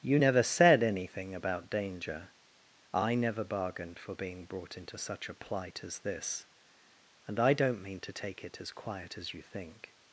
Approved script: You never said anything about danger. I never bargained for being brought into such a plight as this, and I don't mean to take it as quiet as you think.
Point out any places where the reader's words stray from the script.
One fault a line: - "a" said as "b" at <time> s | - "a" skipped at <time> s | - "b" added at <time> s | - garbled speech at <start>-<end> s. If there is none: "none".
none